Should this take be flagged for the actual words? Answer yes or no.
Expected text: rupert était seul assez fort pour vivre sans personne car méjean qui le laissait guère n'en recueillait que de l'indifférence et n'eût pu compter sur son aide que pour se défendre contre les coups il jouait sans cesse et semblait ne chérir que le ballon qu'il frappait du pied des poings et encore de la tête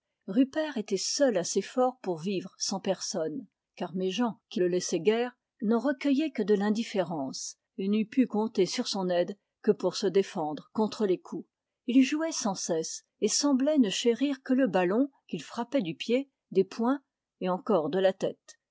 no